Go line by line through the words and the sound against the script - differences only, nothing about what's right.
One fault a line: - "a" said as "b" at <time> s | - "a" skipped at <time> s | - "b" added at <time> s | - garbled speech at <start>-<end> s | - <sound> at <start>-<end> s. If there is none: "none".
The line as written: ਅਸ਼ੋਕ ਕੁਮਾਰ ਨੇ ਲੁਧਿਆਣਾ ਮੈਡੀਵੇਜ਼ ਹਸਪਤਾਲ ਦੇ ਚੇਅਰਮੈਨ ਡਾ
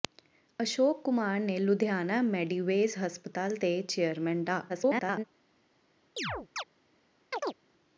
- garbled speech at 4.7-5.2 s
- chirp at 6.2-6.6 s
- chirp at 7.3-7.5 s